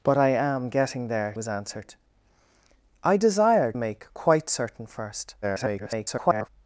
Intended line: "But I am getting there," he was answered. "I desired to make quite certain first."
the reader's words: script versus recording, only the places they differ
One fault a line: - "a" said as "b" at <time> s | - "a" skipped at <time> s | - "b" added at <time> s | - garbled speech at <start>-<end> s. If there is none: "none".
- "he" skipped at 1.3 s
- "to" skipped at 3.8 s
- garbled speech at 5.4-6.5 s